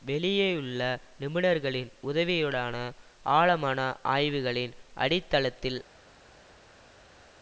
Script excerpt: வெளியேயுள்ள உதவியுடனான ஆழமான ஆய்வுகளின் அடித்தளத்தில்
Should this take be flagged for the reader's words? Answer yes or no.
yes